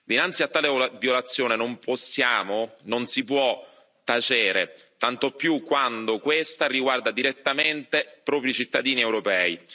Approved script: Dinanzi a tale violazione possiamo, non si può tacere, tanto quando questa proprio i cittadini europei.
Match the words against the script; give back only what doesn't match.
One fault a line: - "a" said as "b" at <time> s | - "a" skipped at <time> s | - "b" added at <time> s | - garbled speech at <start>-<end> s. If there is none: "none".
- "non" added at 1.6 s
- "più" added at 5.3 s
- "riguarda direttamente" added at 6.7 s